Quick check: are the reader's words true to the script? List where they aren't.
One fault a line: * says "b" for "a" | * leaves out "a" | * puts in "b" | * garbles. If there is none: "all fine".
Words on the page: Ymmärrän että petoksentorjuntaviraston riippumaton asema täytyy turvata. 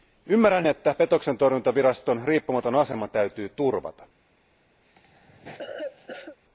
all fine